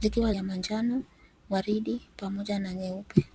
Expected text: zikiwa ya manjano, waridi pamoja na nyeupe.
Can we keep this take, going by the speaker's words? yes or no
yes